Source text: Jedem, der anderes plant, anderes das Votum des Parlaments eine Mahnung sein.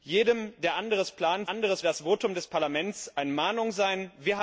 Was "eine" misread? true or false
false